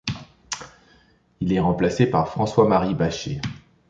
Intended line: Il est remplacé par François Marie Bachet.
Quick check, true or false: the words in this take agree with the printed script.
true